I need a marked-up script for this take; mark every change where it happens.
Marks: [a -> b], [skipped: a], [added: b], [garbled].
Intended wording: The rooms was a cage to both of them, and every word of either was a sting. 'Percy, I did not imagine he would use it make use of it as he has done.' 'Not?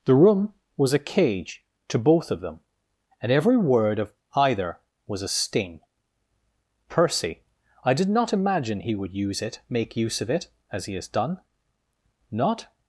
The [rooms -> room] was a cage to both of them, and every word of either was a sting. 'Percy, I did not imagine he would use it make use of it as he has done.' 'Not?